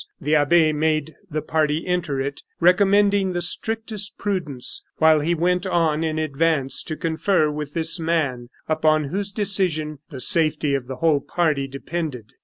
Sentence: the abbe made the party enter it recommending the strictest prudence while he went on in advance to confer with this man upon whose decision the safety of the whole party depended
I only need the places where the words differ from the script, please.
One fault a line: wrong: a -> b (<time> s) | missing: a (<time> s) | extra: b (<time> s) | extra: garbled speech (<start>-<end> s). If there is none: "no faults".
no faults